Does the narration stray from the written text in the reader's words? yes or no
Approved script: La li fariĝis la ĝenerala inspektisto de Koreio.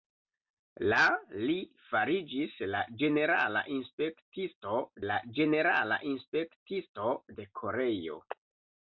yes